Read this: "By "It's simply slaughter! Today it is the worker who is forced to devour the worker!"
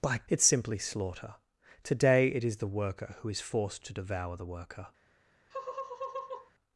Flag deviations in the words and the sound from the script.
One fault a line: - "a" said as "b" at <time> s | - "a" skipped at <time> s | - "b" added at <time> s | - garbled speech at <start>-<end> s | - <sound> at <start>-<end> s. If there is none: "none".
- laugh at 5.5-6.5 s